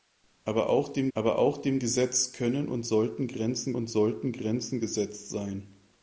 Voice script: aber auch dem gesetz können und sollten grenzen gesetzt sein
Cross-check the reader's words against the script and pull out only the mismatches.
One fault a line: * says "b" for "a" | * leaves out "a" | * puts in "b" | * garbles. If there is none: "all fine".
* puts in "aber auch dem"
* puts in "und sollten grenzen"